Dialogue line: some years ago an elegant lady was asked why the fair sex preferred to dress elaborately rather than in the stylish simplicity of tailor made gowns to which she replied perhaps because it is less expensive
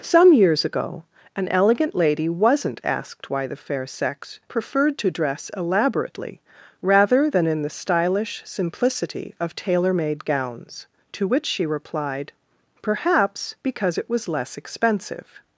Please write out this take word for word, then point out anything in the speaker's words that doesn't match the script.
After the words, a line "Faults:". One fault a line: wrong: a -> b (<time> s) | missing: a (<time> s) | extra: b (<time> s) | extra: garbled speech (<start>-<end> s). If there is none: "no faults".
some years ago an elegant lady wasn't asked why the fair sex preferred to dress elaborately rather than in the stylish simplicity of tailor made gowns to which she replied perhaps because it was less expensive
Faults:
wrong: was -> wasn't (2.3 s)
wrong: is -> was (14.1 s)